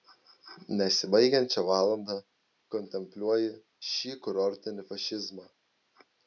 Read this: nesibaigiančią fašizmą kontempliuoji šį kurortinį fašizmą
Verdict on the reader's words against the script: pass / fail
fail